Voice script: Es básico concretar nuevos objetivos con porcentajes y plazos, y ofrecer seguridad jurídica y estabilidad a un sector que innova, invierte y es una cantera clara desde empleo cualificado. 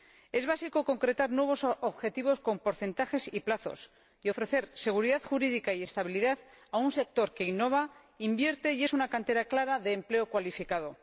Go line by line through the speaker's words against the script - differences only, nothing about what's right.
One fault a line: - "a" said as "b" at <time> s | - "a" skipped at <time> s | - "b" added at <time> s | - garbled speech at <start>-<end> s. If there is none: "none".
- "desde" said as "de" at 9.8 s